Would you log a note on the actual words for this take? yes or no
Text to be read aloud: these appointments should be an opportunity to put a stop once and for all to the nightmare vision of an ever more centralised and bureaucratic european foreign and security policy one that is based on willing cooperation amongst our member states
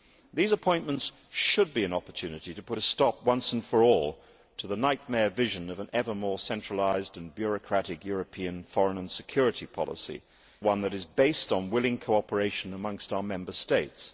no